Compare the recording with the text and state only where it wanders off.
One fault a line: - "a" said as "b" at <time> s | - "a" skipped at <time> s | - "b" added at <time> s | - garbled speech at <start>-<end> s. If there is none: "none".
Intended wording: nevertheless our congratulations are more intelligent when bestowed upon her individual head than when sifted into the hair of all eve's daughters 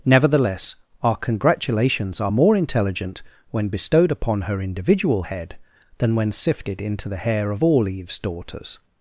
none